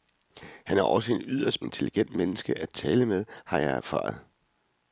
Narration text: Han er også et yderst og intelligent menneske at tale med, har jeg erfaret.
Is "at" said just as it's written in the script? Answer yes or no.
yes